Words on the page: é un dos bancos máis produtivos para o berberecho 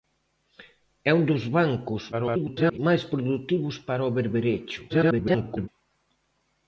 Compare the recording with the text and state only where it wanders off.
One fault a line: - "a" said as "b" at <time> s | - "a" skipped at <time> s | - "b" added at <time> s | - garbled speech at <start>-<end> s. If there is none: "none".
- garbled speech at 2.1-2.8 s
- garbled speech at 4.9-5.7 s